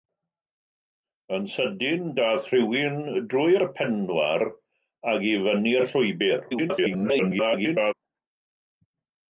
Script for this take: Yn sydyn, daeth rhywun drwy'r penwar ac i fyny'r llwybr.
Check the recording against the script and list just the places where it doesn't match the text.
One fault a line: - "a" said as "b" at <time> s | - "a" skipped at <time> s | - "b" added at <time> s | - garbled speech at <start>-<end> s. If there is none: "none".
- garbled speech at 6.5-7.9 s